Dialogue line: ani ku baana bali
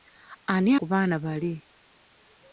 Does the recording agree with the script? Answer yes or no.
yes